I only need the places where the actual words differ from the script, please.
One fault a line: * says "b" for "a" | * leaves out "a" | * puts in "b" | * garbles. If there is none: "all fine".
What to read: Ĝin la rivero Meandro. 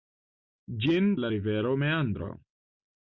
all fine